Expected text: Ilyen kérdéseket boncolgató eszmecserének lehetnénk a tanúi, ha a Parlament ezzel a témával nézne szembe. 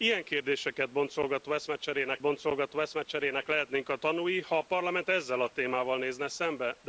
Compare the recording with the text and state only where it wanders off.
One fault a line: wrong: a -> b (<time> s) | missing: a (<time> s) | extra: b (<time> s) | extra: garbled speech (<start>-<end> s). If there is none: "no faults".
extra: boncolgató eszmecserének (2.2 s)